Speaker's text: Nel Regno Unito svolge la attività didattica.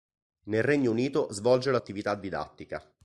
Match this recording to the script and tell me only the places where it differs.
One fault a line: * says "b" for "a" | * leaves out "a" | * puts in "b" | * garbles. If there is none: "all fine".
all fine